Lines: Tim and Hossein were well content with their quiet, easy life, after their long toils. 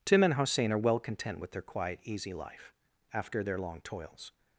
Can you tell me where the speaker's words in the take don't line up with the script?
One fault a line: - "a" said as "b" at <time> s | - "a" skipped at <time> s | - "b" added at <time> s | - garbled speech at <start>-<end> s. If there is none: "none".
- "were" said as "are" at 0.7 s